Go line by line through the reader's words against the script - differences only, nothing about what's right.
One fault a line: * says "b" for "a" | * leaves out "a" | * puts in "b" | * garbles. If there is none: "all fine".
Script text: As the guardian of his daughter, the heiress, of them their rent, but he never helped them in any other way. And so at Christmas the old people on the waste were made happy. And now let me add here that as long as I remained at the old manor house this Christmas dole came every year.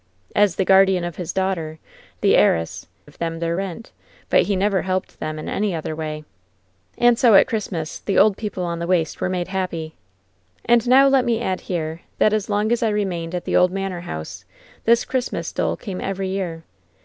all fine